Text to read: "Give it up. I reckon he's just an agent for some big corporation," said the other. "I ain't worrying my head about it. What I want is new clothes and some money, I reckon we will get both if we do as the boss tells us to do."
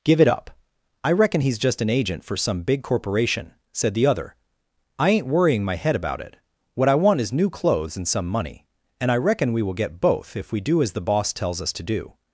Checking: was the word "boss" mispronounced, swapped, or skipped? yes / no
no